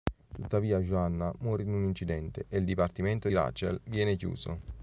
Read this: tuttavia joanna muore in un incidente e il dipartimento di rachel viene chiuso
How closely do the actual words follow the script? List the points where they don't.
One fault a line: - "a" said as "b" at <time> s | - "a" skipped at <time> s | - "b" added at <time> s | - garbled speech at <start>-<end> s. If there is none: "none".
- "di" skipped at 3.3 s